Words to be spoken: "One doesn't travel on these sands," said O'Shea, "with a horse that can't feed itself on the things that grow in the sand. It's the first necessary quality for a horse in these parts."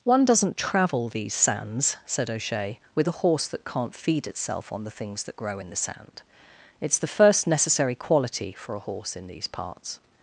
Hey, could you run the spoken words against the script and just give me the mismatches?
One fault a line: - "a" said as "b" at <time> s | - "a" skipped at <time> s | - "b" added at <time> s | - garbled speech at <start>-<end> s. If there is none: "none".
- "on" skipped at 1.1 s